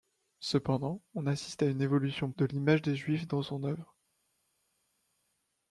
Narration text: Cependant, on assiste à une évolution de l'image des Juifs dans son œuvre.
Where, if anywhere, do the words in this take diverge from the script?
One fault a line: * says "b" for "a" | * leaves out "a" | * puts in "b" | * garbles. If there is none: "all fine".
all fine